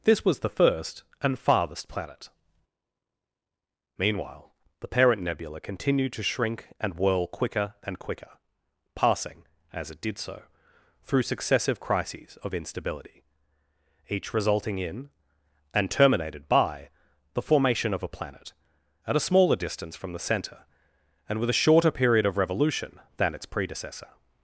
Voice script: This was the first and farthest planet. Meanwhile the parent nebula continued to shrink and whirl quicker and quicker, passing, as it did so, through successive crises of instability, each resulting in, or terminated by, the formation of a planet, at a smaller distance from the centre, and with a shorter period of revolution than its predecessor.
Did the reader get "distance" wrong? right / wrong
right